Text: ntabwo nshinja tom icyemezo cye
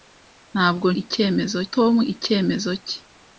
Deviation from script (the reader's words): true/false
true